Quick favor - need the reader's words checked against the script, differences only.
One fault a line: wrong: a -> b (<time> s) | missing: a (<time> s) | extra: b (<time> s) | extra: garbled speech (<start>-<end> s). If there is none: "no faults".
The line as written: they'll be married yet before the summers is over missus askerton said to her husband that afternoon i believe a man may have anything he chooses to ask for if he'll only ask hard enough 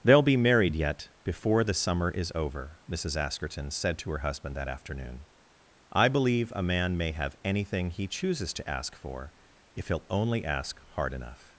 wrong: summers -> summer (1.8 s)